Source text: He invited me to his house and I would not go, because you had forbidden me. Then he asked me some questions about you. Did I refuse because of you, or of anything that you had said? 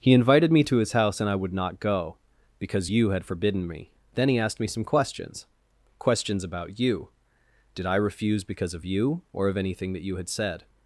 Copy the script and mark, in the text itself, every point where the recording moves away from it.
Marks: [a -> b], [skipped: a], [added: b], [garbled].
He invited me to his house and I would not go, because you had forbidden me. Then he asked me some questions [added: questions] about you. Did I refuse because of you, or of anything that you had said?